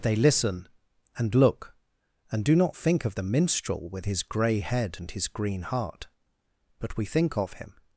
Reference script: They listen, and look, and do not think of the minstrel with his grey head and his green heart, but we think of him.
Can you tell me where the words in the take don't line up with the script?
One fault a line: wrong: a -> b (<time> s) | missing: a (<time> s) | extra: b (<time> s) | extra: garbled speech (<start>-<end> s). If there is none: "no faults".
no faults